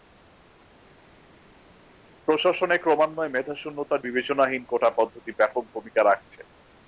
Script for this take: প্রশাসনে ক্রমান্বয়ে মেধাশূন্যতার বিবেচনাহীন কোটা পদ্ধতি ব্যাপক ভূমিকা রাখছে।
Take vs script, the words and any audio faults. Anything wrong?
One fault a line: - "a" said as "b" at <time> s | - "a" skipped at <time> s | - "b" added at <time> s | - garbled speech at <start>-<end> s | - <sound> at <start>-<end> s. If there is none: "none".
none